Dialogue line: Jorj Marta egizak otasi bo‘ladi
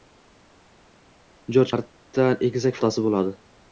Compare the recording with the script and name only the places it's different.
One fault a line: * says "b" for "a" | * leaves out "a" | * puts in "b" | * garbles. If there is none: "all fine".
all fine